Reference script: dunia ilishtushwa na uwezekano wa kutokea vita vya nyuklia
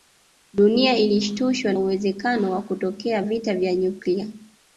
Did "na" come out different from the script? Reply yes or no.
yes